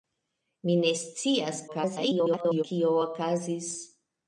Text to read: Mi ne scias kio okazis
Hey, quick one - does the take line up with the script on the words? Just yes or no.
no